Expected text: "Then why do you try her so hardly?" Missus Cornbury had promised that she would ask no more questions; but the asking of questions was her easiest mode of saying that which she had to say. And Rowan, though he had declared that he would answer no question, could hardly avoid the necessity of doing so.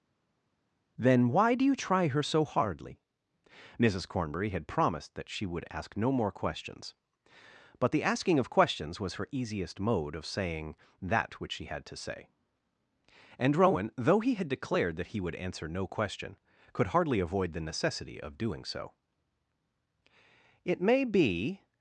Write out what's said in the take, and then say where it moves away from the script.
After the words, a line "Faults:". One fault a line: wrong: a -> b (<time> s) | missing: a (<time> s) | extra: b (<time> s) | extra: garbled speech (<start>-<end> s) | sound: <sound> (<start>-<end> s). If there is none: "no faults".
"Then why do you try her so hardly?" Missus Cornbury had promised that she would ask no more questions; but the asking of questions was her easiest mode of saying that which she had to say. And Rowan, though he had declared that he would answer no question, could hardly avoid the necessity of doing so. "It may be
Faults:
extra: It may be (20.6 s)